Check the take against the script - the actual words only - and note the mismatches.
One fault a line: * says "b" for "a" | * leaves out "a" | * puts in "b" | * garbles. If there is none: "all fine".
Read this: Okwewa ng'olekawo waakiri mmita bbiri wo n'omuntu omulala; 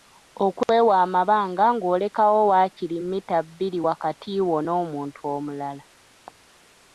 * puts in "amabanga"
* puts in "wakati"